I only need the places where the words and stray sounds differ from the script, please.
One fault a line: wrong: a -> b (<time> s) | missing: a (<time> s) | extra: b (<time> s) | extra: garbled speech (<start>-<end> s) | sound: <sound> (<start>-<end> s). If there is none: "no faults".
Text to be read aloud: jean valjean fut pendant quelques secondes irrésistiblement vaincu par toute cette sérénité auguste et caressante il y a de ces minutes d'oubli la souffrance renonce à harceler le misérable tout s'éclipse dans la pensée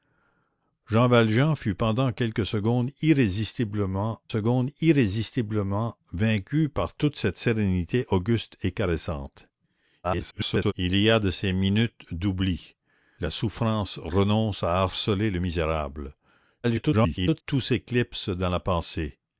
extra: secondes irrésistiblement (4.3 s)
extra: garbled speech (10.0-10.7 s)
extra: garbled speech (16.6-17.4 s)